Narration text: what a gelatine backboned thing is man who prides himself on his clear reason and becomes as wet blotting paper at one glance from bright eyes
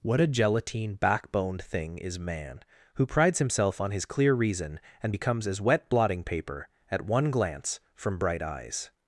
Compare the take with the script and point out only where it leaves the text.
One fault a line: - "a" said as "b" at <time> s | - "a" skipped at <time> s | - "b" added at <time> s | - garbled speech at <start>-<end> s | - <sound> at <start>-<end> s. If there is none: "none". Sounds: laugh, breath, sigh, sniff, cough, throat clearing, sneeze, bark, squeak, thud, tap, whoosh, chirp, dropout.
none